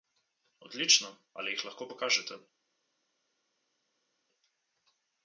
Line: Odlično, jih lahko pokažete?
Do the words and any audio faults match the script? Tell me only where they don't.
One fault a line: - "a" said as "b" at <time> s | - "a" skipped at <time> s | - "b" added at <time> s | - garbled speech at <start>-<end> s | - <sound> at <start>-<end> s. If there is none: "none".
- "ali" added at 1.3 s